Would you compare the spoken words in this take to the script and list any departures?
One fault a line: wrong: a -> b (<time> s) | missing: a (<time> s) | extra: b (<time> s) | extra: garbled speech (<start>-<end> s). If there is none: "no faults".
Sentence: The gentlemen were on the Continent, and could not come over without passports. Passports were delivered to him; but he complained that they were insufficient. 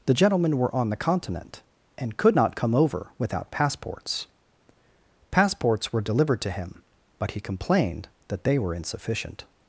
no faults